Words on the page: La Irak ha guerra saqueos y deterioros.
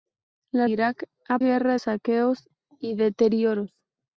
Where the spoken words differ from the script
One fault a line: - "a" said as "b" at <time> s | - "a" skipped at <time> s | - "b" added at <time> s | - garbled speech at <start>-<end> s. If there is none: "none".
none